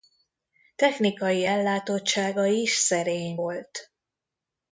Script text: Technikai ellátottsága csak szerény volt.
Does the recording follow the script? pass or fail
fail